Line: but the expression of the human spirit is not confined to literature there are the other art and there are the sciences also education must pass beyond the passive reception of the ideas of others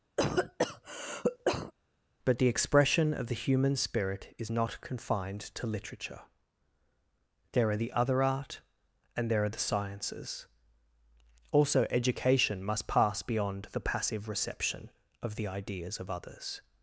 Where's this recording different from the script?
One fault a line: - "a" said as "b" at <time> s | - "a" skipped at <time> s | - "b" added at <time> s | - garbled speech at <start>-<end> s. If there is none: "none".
none